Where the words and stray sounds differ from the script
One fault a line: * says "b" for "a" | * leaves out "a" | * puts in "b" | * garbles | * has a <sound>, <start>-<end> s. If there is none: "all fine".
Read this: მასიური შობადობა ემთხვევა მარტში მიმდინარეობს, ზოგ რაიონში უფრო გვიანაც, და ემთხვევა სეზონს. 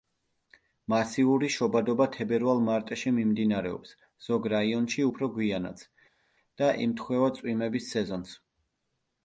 * says "თებერვალ" for "ემთხვევა"
* puts in "წვიმების"